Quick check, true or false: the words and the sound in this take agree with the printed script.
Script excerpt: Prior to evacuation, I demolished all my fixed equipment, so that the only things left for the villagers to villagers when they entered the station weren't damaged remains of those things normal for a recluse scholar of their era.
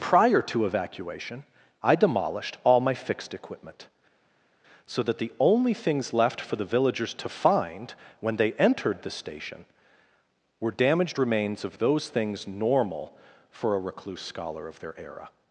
false